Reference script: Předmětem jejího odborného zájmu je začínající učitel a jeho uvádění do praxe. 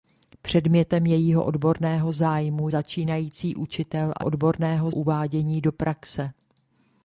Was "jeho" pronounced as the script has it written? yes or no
no